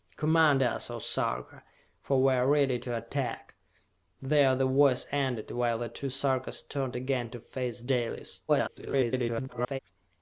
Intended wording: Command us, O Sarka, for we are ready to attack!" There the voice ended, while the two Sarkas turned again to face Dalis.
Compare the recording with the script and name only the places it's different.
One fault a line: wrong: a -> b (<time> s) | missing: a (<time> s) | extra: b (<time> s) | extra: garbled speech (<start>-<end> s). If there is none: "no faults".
extra: garbled speech (8.5-9.8 s)